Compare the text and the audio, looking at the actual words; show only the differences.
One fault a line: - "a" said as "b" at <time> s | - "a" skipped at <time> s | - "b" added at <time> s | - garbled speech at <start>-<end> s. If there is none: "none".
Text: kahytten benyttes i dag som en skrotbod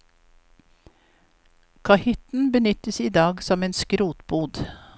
none